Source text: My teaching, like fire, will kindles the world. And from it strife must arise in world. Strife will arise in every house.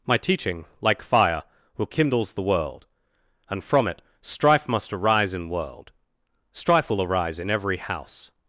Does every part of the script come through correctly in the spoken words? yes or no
yes